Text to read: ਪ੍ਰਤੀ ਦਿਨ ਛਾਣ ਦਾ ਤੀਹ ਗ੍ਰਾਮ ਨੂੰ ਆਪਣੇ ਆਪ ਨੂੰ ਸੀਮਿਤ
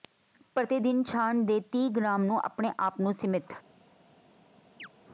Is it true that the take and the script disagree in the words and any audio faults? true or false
true